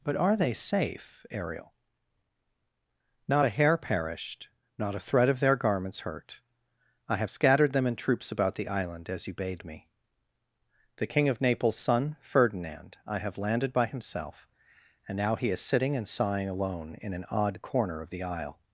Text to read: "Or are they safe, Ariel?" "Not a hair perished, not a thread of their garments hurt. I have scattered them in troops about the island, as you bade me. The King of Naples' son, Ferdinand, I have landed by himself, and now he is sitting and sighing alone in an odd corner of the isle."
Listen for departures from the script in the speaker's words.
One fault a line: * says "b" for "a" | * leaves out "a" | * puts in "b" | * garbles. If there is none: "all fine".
* says "But" for "Or"